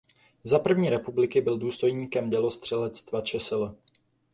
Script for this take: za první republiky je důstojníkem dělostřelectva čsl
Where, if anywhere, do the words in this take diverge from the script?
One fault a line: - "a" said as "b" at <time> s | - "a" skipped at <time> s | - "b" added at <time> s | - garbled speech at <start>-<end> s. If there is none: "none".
- "je" said as "byl" at 1.4 s